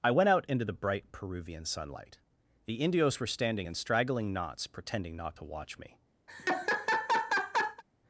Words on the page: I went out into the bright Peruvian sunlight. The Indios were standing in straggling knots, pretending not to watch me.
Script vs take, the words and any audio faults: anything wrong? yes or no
yes